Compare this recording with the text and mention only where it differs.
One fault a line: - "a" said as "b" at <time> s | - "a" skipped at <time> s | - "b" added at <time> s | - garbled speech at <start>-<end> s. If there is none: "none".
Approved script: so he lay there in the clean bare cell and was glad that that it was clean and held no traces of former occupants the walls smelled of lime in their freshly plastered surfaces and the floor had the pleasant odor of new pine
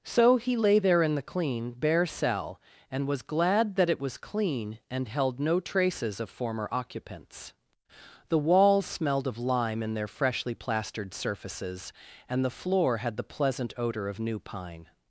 - "that" skipped at 3.9 s